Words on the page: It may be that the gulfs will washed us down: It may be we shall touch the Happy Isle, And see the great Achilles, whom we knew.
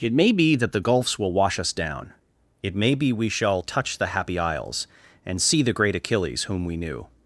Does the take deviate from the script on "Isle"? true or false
true